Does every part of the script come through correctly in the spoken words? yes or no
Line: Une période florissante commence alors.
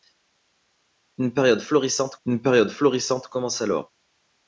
no